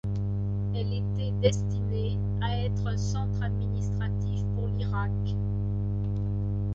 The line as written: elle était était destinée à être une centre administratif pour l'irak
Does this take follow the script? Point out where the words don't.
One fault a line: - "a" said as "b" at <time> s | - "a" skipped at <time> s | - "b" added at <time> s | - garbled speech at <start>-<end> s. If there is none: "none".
- "était" skipped at 1.3 s
- "une" said as "un" at 2.9 s